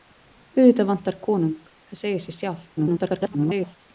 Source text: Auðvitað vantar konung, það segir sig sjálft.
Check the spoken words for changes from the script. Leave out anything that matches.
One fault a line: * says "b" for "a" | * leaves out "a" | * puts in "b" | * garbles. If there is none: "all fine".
* garbles